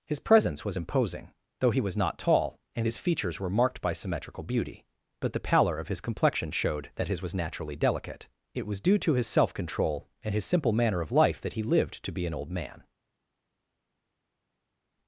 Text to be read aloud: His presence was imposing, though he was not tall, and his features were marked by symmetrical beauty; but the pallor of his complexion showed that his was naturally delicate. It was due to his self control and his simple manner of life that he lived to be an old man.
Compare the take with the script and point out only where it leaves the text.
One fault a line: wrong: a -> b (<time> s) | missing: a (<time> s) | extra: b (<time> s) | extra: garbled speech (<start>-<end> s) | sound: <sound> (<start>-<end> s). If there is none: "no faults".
no faults